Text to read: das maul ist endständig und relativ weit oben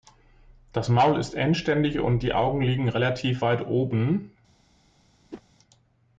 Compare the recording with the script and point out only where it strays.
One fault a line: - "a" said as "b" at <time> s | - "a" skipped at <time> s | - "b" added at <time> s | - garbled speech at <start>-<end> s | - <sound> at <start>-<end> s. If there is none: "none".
- "die augen liegen" added at 2.2 s
- whoosh at 5.3-5.4 s